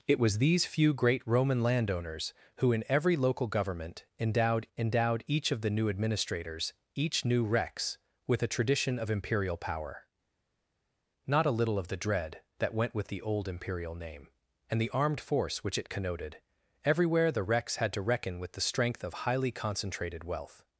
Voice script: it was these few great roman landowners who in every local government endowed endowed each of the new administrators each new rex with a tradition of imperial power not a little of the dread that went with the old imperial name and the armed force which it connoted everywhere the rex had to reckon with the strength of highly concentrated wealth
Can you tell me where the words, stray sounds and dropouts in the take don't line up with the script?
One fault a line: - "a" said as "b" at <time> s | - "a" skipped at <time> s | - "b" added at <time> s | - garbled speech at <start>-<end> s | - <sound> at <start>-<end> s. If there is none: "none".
none